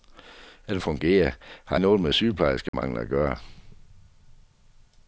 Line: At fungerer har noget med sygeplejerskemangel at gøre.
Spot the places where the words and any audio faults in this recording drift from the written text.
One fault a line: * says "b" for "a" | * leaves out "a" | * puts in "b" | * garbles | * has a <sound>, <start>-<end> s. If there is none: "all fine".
* has a dropout, 2.7-2.7 s